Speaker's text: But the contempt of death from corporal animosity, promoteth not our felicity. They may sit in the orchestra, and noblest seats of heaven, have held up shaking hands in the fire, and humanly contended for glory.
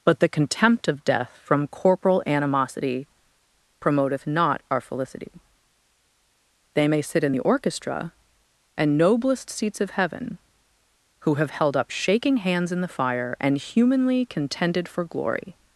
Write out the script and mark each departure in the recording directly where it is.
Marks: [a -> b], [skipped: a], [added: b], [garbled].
But the contempt of death from corporal animosity, promoteth not our felicity. They may sit in the orchestra, and noblest seats of heaven, [added: who] have held up shaking hands in the fire, and humanly contended for glory.